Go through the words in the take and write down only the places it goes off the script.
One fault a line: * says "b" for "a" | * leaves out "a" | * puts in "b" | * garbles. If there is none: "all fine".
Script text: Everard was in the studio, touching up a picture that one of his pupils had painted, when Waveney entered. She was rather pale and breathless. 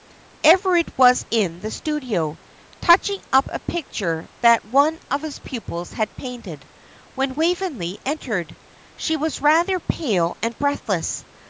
all fine